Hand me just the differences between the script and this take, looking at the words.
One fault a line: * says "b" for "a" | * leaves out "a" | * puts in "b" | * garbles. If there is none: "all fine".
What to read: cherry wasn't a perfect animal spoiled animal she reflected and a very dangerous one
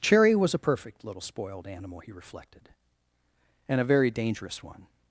* says "was" for "wasn't"
* says "little" for "animal"
* says "he" for "she"